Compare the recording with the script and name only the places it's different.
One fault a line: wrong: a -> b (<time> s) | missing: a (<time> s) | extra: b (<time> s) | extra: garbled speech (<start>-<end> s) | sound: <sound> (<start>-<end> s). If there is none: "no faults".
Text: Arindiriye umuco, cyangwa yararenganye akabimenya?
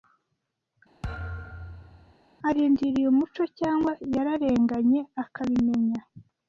sound: thud (1.0-2.1 s)